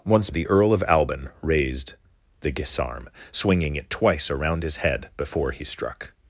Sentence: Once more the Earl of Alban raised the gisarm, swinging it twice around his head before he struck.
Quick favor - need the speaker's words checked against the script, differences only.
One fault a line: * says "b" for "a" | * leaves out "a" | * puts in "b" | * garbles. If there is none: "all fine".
* leaves out "more"